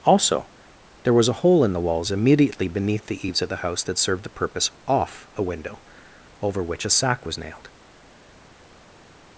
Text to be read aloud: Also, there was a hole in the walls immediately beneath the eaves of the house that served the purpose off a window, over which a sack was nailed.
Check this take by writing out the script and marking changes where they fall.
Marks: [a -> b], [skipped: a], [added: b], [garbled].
Also, there was a hole in the walls immediately beneath the eaves of the house that served the purpose off a window, over which a sack was nailed.